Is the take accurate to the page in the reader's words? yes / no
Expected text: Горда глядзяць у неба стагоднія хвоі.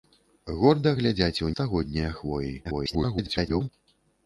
no